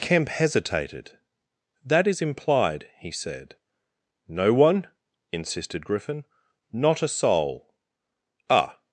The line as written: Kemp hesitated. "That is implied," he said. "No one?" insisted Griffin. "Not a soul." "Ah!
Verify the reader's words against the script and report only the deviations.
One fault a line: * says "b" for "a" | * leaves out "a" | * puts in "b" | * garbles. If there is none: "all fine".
all fine